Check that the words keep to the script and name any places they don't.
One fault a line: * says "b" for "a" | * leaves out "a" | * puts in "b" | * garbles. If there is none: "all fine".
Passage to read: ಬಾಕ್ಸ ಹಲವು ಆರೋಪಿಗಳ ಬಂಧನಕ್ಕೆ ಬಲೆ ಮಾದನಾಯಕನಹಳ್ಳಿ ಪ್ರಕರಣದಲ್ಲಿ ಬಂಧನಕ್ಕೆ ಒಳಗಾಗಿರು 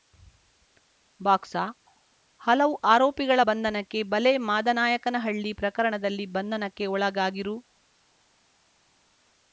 all fine